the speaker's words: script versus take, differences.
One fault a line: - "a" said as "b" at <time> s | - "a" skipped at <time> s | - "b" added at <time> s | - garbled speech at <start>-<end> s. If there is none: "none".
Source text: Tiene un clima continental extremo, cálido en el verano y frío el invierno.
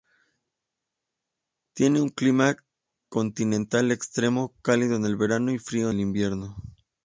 none